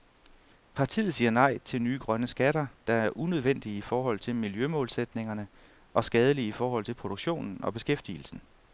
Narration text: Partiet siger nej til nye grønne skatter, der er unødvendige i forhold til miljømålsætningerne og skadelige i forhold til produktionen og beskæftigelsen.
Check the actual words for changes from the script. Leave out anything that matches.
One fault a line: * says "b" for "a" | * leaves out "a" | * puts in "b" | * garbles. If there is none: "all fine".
all fine